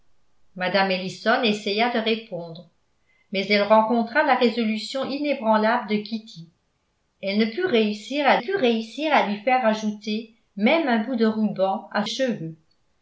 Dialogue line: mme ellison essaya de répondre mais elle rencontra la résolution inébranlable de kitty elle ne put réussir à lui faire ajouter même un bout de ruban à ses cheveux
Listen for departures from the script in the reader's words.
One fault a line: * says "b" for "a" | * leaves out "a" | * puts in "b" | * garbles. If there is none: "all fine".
* puts in "put réussir à"
* leaves out "ses"